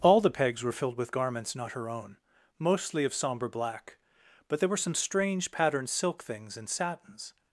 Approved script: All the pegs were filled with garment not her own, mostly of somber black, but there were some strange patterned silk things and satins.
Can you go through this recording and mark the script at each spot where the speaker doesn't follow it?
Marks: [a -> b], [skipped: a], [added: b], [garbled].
All the pegs were filled with [garment -> garments] not her own, mostly of somber black, but there were some strange patterned silk things and satins.